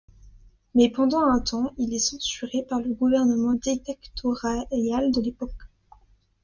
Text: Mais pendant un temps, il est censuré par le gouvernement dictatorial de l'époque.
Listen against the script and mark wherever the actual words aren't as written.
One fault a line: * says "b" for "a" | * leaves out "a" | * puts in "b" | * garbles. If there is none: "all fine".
all fine